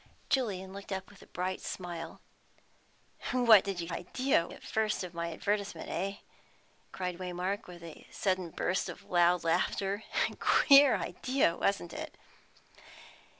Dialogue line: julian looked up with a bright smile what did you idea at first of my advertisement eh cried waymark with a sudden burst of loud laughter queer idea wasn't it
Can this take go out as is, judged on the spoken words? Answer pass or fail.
pass